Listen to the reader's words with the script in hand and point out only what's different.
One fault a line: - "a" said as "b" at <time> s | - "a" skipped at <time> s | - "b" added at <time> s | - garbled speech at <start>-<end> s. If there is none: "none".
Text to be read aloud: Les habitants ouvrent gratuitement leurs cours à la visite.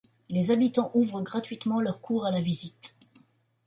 none